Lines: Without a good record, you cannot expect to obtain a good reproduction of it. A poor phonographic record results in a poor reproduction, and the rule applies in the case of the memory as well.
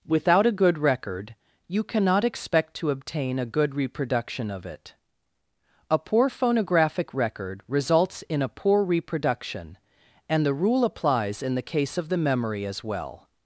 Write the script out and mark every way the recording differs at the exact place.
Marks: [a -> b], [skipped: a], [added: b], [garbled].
Without a good record, you cannot expect to obtain a good reproduction of it. A poor phonographic record results in a poor reproduction, and the rule applies in the case of the memory as well.